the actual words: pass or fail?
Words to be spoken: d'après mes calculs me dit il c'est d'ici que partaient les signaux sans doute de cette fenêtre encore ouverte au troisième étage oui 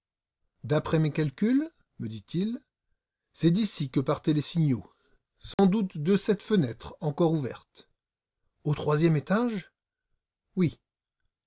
pass